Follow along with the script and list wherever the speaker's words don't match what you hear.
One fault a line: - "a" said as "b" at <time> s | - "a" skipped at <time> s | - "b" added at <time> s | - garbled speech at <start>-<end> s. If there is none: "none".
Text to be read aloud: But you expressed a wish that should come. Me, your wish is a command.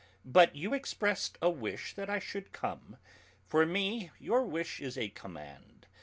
- "I" added at 2.1 s
- "For" added at 3.4 s